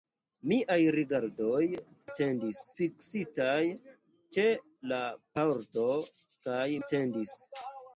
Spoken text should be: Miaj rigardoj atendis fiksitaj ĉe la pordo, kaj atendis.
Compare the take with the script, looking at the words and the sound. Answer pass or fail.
pass